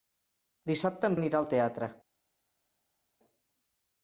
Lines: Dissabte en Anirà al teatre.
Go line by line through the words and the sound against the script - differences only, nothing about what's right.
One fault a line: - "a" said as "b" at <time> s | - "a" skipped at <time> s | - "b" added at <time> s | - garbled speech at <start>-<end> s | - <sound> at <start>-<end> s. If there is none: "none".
none